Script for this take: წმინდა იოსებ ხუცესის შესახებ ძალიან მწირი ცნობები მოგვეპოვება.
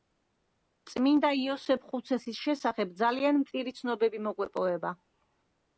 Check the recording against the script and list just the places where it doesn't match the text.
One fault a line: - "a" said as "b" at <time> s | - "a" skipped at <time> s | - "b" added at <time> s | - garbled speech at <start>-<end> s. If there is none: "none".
none